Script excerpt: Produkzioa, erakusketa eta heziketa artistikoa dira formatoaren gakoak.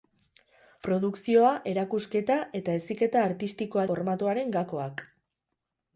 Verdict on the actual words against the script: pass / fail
fail